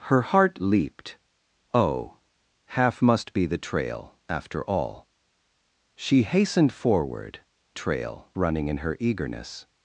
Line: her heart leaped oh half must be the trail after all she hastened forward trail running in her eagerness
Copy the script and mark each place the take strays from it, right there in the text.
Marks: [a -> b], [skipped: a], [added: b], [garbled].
her heart leaped oh half must be the trail after all she hastened forward trail running in her eagerness